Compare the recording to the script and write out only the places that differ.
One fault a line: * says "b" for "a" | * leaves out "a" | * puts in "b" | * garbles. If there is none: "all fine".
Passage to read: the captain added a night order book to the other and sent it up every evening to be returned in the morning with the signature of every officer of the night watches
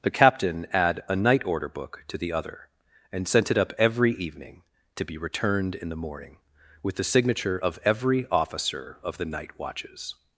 * says "add" for "added"